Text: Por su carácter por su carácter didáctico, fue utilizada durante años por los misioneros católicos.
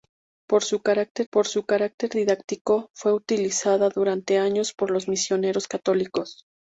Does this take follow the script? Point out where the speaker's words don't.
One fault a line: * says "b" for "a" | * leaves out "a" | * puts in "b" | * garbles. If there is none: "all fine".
all fine